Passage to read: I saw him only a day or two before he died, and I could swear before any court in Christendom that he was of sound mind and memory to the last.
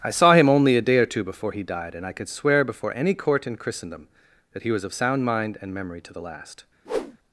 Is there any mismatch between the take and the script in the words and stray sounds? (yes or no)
yes